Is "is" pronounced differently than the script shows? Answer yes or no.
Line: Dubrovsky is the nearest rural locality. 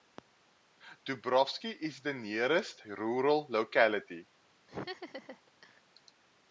no